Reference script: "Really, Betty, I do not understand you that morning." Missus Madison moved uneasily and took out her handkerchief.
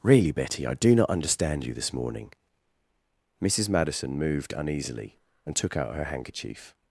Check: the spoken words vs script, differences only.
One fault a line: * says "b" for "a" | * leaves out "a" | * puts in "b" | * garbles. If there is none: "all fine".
* says "this" for "that"